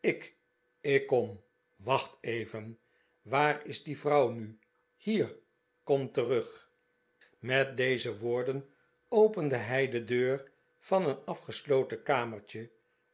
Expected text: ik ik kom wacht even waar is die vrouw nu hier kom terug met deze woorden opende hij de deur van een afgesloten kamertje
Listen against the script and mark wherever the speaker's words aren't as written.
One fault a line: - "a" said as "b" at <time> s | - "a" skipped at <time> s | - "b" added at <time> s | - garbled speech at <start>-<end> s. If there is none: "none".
none